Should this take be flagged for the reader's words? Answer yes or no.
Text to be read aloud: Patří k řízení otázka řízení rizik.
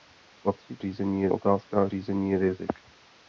no